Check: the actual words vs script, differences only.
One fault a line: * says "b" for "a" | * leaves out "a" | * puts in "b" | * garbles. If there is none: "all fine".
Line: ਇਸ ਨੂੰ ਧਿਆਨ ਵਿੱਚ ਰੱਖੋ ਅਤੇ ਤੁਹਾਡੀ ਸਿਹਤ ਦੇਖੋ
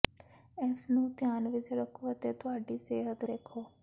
all fine